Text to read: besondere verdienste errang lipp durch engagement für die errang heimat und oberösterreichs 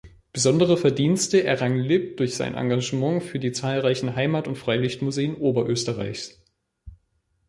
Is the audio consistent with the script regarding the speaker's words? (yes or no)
no